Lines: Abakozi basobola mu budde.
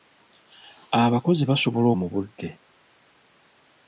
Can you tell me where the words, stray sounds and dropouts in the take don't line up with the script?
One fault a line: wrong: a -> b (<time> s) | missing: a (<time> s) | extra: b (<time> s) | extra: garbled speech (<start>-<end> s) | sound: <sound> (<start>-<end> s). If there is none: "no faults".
no faults